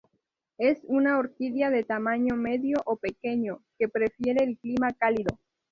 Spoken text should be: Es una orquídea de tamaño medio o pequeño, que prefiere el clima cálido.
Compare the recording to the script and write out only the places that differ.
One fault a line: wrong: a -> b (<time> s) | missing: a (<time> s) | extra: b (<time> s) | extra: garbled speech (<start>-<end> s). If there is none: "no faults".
no faults